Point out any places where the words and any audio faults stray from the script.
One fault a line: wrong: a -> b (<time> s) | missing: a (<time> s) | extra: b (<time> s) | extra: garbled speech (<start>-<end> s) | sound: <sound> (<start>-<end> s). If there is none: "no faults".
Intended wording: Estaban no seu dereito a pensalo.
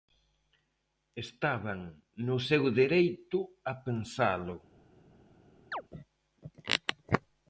sound: chirp (5.7-5.8 s)